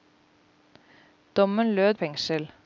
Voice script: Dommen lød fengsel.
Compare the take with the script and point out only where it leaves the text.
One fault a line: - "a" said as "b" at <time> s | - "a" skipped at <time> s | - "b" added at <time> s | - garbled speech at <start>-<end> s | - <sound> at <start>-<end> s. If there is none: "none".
none